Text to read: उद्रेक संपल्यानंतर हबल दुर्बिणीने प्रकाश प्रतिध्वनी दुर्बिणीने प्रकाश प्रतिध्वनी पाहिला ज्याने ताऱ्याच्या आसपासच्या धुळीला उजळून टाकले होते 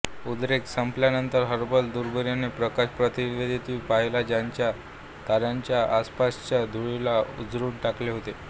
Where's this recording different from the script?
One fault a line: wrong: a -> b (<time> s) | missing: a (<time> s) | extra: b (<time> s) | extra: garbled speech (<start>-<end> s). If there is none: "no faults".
missing: दुर्बिणीने प्रकाश प्रतिध्वनी (3.8 s)